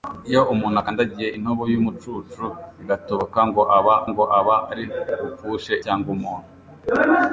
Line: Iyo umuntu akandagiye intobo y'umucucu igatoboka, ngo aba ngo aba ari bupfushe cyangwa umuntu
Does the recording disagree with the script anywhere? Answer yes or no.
no